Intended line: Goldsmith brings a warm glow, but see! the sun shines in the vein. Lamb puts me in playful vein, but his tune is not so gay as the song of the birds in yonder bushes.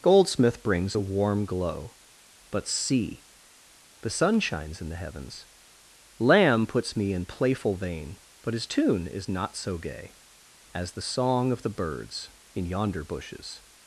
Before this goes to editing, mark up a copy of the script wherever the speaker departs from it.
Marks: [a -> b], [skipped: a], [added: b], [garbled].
Goldsmith brings a warm glow, but see! the sun shines in the [vein. -> heavens] Lamb puts me in playful vein, but his tune is not so gay as the song of the birds in yonder bushes.